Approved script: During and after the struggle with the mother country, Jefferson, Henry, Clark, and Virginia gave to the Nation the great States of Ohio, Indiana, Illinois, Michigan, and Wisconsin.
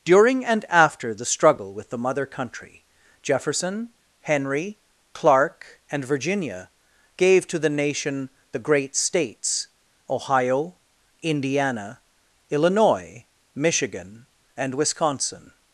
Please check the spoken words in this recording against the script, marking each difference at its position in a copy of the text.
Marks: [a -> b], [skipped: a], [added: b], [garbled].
During and after the struggle with the mother country, Jefferson, Henry, Clark, and Virginia gave to the Nation the great States [skipped: of] Ohio, Indiana, Illinois, Michigan, and Wisconsin.